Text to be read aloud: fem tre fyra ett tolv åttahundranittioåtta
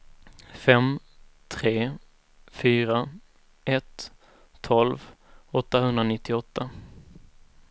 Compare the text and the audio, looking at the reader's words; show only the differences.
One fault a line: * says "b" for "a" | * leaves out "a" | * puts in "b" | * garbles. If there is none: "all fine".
all fine